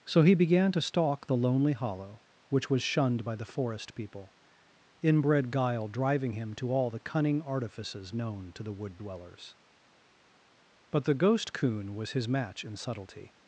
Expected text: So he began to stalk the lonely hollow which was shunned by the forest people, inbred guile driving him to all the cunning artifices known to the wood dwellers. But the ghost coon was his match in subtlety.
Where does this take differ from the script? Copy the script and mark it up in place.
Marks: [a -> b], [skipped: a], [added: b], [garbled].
So he began to stalk the lonely hollow which was shunned by the forest people, inbred guile driving him to all the cunning artifices known to the wood dwellers. But the ghost coon was his match in subtlety.